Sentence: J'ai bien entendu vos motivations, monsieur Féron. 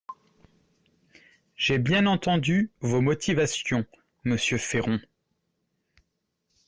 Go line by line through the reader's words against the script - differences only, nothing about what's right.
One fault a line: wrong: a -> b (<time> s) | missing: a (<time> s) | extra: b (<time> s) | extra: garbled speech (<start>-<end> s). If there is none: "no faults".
no faults